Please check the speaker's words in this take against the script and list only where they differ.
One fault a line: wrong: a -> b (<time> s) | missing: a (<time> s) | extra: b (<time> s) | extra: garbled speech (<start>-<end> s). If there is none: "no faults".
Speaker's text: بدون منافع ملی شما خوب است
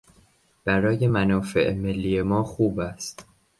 wrong: بدون -> برای (0.7 s)
wrong: شما -> ما (2.2 s)